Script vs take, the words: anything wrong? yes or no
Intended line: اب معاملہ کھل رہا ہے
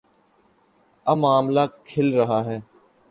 no